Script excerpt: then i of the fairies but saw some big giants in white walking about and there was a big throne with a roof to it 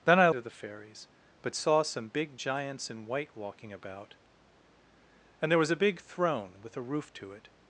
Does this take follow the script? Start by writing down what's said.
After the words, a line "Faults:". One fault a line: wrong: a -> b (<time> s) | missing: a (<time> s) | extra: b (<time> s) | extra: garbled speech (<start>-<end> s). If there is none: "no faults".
then i of the fairies but saw some big giants in white walking about and there was a big throne with a roof to it
Faults:
no faults